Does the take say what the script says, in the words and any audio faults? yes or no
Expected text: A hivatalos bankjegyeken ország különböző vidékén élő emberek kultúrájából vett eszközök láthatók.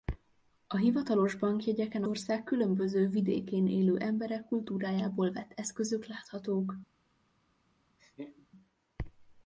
no